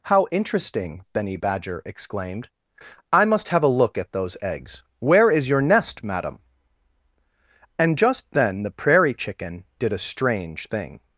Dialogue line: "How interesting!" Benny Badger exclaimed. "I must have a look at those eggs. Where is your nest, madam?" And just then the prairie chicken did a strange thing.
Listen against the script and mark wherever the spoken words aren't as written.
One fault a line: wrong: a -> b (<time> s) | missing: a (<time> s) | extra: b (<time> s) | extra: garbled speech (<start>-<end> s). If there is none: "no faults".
no faults